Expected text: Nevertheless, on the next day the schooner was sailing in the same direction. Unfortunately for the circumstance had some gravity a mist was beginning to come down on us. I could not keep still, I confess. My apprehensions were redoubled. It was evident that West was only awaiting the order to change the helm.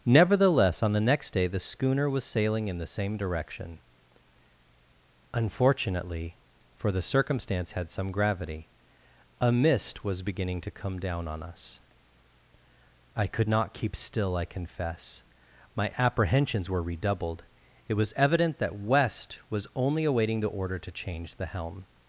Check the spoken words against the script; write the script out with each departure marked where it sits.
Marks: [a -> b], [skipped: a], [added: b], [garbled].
Nevertheless, on the next day the schooner was sailing in the same direction. Unfortunately for the circumstance had some gravity a mist was beginning to come down on us. I could not keep still, I confess. My apprehensions were redoubled. It was evident that West was only awaiting the order to change the helm.